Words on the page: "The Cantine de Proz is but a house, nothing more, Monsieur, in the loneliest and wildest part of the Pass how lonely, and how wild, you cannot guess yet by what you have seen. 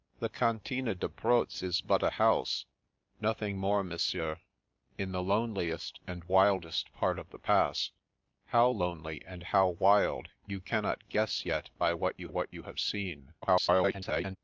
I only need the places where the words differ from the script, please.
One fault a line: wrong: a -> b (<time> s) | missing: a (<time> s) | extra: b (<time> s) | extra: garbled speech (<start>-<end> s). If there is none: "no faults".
extra: what you (12.3 s)
extra: garbled speech (13.4-14.4 s)